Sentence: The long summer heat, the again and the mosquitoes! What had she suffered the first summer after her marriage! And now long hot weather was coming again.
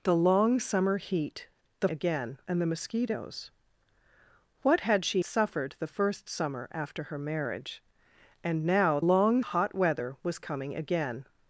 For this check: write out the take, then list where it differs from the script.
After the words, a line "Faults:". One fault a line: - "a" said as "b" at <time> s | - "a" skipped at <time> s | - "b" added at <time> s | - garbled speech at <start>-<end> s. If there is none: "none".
The long summer heat, the again and the mosquitoes! What had she suffered the first summer after her marriage! And now long hot weather was coming again.
Faults:
none